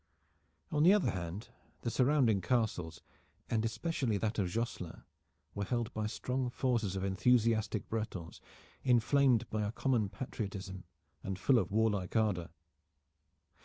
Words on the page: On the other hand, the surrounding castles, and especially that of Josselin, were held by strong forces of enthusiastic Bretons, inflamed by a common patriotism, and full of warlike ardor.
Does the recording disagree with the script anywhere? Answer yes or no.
no